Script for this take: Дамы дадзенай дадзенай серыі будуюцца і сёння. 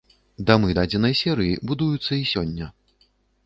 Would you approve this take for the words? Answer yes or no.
no